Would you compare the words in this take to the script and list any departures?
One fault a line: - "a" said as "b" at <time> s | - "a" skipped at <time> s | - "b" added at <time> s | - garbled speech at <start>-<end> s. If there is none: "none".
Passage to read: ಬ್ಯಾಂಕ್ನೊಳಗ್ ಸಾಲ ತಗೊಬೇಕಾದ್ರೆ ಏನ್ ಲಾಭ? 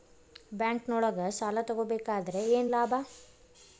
none